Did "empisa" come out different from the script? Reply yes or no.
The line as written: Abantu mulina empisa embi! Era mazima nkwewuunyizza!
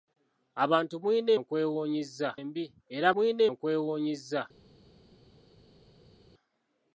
yes